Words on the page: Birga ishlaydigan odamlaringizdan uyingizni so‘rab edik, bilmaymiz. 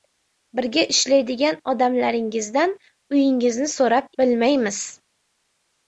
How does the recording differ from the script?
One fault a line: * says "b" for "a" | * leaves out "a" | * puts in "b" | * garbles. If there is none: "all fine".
* leaves out "edik"